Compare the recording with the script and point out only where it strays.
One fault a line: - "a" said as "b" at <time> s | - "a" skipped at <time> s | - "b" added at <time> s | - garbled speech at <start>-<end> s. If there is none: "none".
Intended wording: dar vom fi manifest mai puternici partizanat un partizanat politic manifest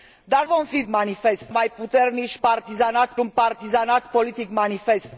none